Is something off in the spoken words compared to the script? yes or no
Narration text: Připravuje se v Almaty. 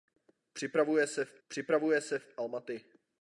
yes